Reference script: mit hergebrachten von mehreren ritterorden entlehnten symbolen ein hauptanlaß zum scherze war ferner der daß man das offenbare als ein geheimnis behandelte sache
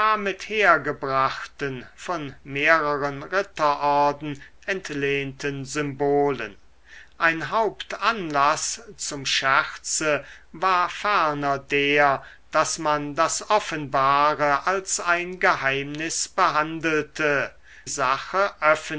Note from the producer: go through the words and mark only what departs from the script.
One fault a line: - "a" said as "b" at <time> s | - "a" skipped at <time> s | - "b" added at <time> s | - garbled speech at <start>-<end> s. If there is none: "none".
none